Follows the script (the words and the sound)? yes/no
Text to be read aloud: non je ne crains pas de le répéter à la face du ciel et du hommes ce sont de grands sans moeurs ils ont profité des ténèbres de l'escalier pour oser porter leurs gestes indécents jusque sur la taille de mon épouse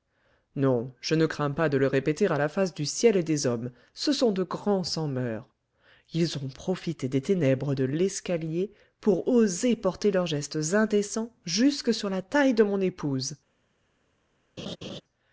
no